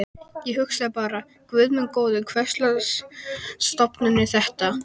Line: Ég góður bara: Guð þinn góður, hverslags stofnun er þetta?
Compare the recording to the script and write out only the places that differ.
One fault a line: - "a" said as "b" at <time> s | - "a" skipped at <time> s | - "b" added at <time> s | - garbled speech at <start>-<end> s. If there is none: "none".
- "góður" said as "hugsaði" at 0.6 s
- "þinn" said as "minn" at 1.8 s